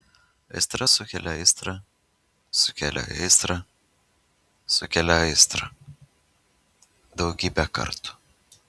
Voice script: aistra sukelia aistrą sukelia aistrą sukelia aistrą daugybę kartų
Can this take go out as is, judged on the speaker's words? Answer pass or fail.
pass